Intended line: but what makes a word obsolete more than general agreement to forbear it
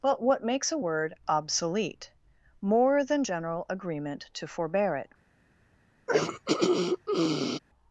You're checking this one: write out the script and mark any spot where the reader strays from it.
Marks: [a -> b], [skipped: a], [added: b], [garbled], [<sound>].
but what makes a word obsolete more than general agreement to forbear it [throat clearing]